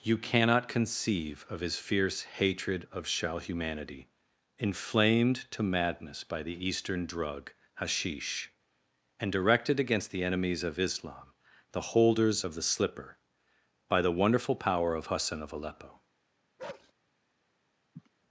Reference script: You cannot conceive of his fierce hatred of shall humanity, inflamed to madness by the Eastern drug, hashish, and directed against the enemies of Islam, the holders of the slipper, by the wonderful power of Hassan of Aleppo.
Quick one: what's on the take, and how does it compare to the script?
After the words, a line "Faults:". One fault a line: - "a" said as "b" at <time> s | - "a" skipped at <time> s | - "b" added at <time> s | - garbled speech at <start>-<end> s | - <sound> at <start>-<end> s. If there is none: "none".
You cannot conceive of his fierce hatred of shall humanity, inflamed to madness by the Eastern drug, hashish, and directed against the enemies of Islam, the holders of the slipper, by the wonderful power of Hassan of Aleppo.
Faults:
- bark at 16.6-16.9 s
- sniff at 17.9-18.1 s